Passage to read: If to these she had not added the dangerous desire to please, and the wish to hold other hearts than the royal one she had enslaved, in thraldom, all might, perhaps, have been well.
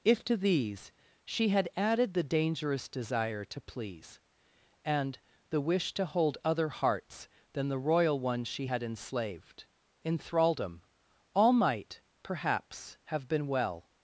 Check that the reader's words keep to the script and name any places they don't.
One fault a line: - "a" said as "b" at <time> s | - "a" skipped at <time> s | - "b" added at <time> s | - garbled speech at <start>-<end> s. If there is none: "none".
- "not" skipped at 1.7 s